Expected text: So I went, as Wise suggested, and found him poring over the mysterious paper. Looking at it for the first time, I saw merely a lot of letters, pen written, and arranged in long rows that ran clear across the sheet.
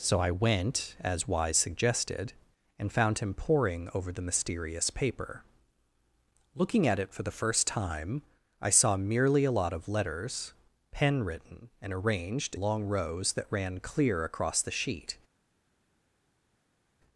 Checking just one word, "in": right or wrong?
wrong